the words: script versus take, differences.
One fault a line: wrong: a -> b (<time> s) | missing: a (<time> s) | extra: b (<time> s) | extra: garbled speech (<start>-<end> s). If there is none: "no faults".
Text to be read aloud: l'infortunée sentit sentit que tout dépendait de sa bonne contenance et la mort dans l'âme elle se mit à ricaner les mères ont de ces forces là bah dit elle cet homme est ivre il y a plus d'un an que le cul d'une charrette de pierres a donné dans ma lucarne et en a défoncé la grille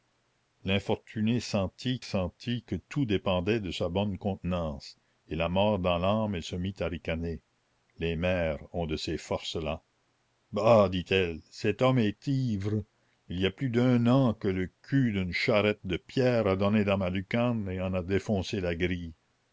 no faults